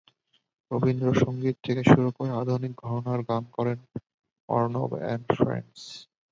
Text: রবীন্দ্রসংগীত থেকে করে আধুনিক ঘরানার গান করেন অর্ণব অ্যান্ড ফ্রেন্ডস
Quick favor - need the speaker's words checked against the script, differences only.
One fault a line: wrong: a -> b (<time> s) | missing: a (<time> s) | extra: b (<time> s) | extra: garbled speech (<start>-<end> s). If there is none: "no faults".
extra: শুরু (1.9 s)